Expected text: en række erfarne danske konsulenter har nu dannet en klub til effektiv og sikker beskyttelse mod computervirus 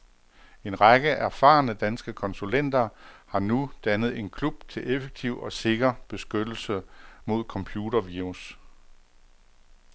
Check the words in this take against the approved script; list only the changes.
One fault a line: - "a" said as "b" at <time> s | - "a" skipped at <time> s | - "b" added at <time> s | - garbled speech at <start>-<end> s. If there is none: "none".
none